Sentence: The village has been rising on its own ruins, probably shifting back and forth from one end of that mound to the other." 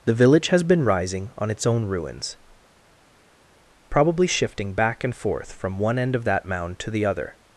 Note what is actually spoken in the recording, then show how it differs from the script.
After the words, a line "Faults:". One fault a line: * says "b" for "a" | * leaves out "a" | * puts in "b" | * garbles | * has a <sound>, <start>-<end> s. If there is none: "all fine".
The village has been rising on its own ruins, probably shifting back and forth from one end of that mound to the other."
Faults:
all fine